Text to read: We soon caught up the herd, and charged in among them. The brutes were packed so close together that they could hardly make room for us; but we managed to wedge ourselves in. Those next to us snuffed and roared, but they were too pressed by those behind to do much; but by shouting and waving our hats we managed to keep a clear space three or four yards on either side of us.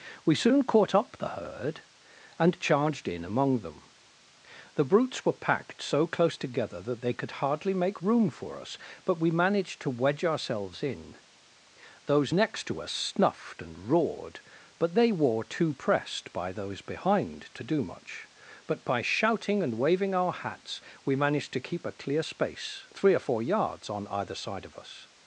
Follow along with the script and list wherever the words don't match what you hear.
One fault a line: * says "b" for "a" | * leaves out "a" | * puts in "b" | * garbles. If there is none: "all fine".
all fine